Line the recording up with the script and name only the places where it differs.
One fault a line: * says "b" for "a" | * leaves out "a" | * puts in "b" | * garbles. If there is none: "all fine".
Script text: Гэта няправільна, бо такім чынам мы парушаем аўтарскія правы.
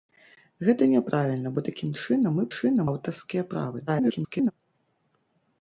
* says "чынам" for "парушаем"
* garbles